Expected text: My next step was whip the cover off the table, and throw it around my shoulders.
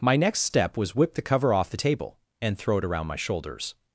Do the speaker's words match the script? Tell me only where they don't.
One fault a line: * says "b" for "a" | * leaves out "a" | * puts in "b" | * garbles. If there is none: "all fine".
all fine